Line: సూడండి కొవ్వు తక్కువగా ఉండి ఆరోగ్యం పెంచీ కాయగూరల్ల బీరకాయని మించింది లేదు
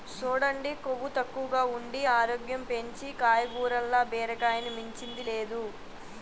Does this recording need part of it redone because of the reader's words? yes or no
no